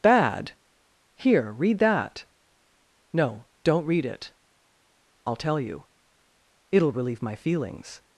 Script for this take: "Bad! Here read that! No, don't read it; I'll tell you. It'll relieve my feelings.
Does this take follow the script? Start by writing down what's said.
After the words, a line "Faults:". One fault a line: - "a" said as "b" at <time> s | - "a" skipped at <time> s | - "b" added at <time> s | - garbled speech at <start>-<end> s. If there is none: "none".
"Bad! Here read that! No, don't read it; I'll tell you. It'll relieve my feelings.
Faults:
none